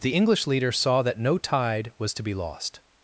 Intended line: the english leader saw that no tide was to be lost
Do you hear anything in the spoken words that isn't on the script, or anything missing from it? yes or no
no